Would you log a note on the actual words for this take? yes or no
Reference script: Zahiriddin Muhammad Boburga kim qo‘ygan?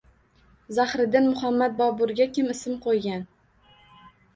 yes